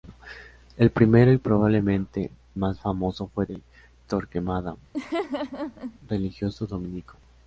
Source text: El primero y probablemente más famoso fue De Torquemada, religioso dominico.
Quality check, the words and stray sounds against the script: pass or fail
fail